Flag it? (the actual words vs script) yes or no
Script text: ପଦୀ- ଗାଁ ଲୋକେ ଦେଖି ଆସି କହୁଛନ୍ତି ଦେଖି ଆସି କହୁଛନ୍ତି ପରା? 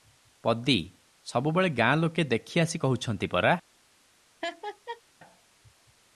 yes